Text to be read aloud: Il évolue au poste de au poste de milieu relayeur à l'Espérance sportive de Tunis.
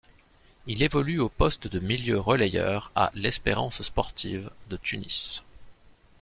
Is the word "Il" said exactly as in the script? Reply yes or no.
yes